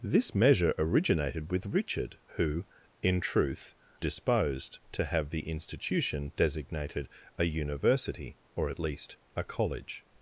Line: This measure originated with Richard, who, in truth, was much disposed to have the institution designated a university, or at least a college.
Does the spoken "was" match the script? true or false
false